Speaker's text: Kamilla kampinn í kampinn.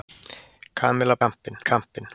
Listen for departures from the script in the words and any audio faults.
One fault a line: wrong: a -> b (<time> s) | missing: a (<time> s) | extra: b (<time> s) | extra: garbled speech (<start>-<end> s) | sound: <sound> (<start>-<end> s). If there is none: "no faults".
no faults